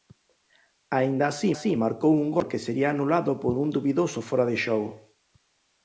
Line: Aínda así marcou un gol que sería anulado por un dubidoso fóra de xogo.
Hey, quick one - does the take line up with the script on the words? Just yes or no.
no